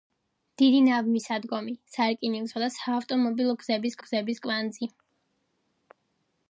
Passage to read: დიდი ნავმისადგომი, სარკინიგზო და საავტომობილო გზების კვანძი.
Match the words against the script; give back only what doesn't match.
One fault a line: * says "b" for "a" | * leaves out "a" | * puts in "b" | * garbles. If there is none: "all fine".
* puts in "გზების"